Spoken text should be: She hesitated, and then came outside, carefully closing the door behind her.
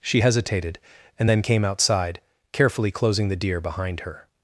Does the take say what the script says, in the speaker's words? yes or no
no